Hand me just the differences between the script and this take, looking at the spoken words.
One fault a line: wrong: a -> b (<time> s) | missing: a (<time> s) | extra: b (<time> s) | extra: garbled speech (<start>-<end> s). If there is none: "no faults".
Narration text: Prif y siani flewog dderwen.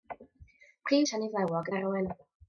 no faults